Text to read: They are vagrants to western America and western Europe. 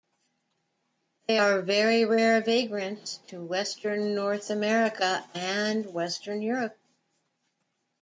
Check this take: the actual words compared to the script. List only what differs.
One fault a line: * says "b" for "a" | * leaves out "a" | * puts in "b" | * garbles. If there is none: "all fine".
* puts in "very rare"
* puts in "North"